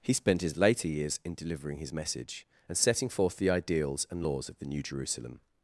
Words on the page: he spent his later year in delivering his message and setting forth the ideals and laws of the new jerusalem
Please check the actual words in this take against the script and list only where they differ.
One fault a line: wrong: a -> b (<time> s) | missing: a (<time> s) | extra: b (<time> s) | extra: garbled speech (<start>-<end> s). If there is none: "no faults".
wrong: year -> years (0.9 s)